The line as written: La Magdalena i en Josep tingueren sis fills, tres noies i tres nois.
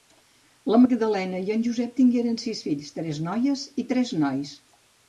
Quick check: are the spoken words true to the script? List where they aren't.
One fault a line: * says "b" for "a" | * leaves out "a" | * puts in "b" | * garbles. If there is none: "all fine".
all fine